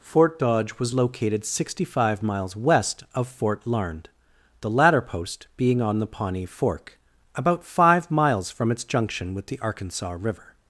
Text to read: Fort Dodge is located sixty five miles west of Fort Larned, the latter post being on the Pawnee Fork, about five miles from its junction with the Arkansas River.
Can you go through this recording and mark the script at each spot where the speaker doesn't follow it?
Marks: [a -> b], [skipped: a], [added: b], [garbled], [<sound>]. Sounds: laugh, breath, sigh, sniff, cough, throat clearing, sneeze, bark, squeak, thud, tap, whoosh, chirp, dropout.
Fort Dodge [is -> was] located sixty five miles west of Fort Larned, the latter post being on the Pawnee Fork, about five miles from its junction with the Arkansas River.